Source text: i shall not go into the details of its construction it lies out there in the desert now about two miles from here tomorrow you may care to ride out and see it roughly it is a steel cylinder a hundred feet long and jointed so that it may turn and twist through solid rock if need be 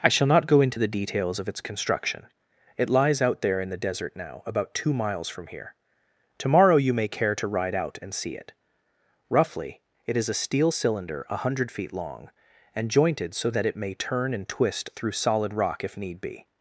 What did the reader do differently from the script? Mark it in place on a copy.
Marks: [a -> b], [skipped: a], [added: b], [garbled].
i shall not go into the details of its construction it lies out there in the desert now about two miles from here tomorrow you may care to ride out and see it roughly it is a steel cylinder a hundred feet long and jointed so that it may turn and twist through solid rock if need be